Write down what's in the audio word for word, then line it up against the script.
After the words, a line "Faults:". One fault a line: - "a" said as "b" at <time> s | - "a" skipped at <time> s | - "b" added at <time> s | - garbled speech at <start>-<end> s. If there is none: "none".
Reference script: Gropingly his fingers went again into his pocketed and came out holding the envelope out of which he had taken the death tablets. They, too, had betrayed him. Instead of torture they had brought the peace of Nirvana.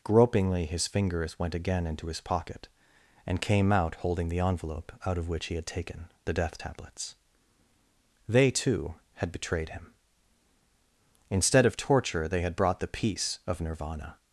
Gropingly his fingers went again into his pocket and came out holding the envelope out of which he had taken the death tablets. They, too, had betrayed him. Instead of torture they had brought the peace of Nirvana.
Faults:
- "pocketed" said as "pocket" at 2.2 s